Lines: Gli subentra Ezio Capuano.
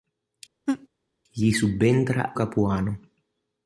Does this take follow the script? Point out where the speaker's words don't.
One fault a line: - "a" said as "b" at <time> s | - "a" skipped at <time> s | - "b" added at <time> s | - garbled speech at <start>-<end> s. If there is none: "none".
- "Ezio" skipped at 2.3 s